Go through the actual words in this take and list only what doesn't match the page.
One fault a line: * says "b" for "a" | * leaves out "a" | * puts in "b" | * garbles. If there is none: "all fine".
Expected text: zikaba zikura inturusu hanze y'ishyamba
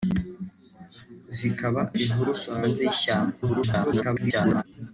* leaves out "zikura"
* garbles